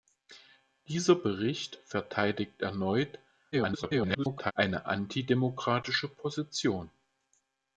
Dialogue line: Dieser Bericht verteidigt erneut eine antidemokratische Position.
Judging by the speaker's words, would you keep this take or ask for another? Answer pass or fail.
fail